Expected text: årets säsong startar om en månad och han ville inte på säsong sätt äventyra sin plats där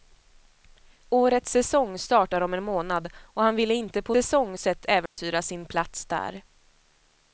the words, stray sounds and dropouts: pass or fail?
fail